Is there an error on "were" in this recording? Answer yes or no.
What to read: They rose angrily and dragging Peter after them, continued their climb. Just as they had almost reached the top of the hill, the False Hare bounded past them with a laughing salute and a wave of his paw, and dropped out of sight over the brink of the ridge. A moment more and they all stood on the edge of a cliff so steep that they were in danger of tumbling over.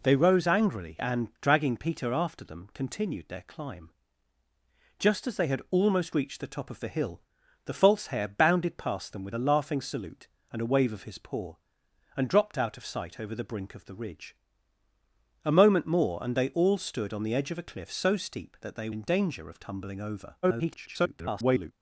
yes